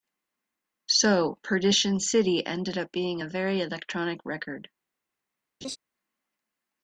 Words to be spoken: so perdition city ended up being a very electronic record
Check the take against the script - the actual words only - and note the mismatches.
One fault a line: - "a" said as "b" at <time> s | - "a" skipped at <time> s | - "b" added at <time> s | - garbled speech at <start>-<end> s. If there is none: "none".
none